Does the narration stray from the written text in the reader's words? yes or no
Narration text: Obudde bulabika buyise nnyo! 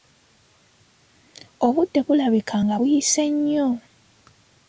yes